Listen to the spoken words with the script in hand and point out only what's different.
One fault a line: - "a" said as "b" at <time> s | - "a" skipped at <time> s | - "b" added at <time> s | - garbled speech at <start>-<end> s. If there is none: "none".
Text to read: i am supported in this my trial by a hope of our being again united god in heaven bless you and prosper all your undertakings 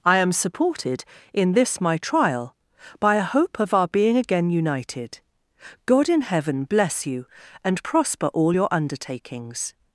none